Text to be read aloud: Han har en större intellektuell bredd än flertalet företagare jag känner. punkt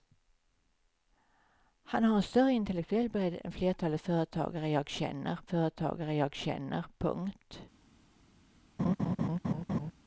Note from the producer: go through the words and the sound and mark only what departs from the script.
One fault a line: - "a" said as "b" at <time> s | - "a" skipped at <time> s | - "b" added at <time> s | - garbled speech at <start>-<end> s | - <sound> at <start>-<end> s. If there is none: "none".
- "företagare jag känner" added at 5.5 s
- laugh at 8.8-9.9 s